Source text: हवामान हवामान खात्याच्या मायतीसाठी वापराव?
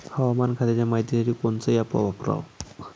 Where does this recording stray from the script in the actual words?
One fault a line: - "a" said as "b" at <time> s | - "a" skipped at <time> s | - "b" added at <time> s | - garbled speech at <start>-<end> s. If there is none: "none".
- "हवामान" skipped at 0.5 s
- "कोनचं ॲप" added at 1.3 s